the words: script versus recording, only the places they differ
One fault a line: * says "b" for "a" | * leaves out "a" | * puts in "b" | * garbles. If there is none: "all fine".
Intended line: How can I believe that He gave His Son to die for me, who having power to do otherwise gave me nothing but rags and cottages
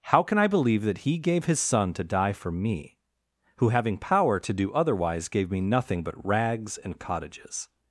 all fine